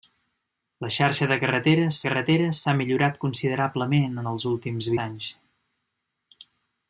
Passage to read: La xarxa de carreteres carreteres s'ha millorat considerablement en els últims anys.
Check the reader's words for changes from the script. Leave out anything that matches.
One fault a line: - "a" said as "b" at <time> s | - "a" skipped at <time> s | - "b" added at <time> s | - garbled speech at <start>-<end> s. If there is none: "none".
none